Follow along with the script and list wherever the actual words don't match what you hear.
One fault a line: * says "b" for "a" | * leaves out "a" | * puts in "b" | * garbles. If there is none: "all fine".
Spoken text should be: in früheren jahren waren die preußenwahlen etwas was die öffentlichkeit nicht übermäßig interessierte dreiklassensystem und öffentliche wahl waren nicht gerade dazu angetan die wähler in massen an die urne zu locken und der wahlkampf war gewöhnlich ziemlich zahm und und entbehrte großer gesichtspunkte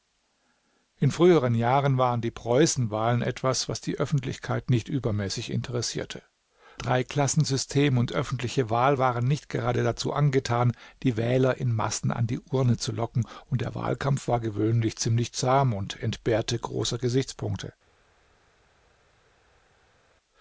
* leaves out "und"